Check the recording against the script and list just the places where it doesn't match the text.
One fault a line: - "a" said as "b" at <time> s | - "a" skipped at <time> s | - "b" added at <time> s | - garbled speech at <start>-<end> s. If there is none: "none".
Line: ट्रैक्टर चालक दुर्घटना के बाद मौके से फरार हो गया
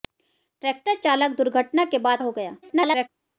- "मौके से फरार" skipped at 2.2 s
- garbled speech at 2.6-3.1 s